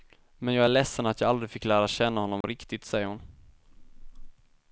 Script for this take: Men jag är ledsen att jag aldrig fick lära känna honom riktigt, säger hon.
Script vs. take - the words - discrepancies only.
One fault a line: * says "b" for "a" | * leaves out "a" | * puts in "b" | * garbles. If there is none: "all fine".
all fine